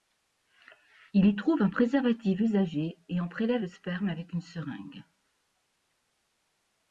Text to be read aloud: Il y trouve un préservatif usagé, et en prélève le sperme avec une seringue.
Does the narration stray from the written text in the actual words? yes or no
no